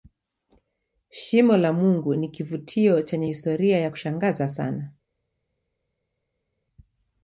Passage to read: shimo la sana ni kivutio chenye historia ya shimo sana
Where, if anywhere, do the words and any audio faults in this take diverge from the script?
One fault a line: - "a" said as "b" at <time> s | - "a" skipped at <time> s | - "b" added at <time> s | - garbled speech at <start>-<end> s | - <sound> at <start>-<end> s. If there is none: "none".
- "sana" said as "mungu" at 1.7 s
- "shimo" said as "kushangaza" at 3.9 s